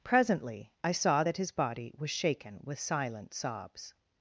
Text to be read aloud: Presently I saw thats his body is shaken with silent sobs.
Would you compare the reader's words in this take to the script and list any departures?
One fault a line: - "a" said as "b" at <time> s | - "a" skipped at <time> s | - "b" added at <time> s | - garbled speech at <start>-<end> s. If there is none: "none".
- "thats" said as "that" at 1.2 s
- "is" said as "was" at 2.0 s